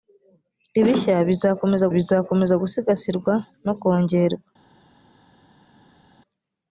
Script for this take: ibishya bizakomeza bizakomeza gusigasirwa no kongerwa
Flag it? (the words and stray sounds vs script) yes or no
no